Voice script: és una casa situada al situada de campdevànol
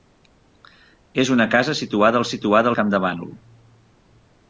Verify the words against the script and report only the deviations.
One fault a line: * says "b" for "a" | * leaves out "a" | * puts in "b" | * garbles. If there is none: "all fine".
all fine